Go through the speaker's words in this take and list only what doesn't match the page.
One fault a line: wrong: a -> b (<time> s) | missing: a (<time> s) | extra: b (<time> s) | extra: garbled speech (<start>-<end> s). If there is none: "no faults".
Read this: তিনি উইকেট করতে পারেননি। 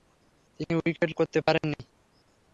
no faults